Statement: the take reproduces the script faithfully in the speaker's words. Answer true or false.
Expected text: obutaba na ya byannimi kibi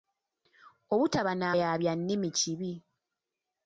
true